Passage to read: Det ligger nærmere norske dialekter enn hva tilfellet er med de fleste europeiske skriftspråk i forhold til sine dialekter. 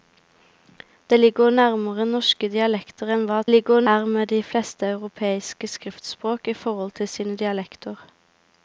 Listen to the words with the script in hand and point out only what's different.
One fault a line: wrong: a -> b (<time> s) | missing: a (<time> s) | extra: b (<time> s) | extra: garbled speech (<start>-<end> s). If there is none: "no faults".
wrong: tilfellet -> ligger (3.5 s)